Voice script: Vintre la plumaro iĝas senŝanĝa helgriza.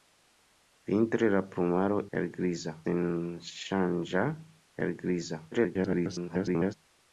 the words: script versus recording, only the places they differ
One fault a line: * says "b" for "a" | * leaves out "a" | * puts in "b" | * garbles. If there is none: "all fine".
* says "helgriza" for "iĝas"
* garbles